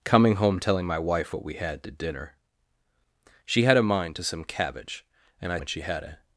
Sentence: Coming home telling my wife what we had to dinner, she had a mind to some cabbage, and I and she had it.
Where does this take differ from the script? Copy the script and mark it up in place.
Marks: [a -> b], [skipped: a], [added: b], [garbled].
Coming home telling my wife what we had to dinner, she had a mind to some cabbage, and I and she had it.